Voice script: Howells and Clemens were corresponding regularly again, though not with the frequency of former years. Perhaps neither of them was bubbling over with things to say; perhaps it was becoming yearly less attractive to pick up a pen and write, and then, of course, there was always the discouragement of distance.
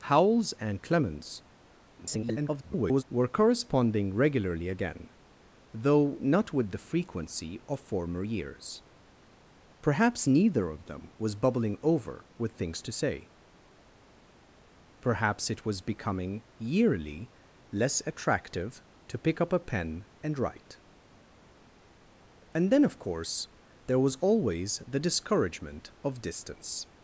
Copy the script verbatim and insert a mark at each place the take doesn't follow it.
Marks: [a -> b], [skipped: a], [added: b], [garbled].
Howells and Clemens [garbled] were corresponding regularly again, though not with the frequency of former years. Perhaps neither of them was bubbling over with things to say; perhaps it was becoming yearly less attractive to pick up a pen and write, and then, of course, there was always the discouragement of distance.